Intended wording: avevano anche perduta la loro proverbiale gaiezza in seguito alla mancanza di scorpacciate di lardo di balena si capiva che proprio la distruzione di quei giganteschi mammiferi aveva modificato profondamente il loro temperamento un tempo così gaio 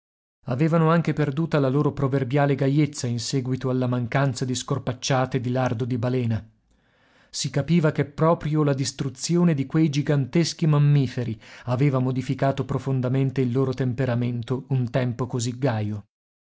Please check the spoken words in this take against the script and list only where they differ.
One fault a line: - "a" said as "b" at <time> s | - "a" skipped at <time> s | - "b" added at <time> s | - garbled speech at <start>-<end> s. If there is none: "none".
none